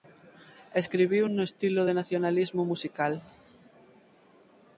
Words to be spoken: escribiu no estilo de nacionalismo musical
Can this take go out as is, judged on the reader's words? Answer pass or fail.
pass